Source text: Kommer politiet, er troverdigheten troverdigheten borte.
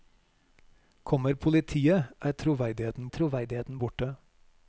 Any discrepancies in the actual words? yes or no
no